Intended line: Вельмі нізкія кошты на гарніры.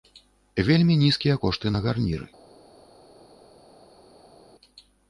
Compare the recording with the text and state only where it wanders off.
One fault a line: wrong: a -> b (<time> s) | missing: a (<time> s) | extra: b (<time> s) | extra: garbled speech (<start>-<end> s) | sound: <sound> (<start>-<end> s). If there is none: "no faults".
no faults